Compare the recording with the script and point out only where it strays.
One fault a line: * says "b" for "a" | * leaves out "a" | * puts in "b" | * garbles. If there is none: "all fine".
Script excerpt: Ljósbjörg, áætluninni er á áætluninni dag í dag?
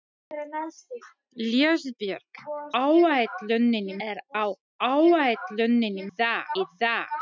all fine